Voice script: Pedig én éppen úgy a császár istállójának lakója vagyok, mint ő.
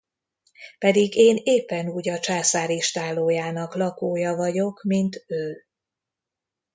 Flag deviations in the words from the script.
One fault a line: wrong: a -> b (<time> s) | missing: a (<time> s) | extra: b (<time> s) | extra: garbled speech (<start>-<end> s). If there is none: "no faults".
no faults